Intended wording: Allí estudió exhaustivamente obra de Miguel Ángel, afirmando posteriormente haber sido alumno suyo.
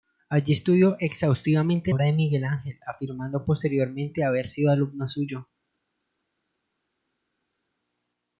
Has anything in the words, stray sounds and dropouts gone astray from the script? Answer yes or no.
no